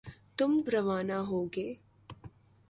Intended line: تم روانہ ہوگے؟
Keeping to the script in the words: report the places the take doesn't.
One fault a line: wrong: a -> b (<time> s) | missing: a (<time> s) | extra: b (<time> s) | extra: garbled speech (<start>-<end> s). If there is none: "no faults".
no faults